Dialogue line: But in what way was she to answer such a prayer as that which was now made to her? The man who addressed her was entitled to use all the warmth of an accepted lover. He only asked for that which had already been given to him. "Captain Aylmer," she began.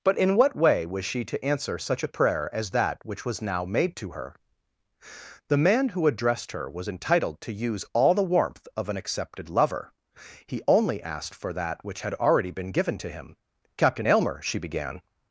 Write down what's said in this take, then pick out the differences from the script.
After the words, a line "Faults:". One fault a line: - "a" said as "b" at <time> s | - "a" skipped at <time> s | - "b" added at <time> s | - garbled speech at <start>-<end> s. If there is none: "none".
But in what way was she to answer such a prayer as that which was now made to her? The man who addressed her was entitled to use all the warmth of an accepted lover. He only asked for that which had already been given to him. "Captain Aylmer," she began.
Faults:
none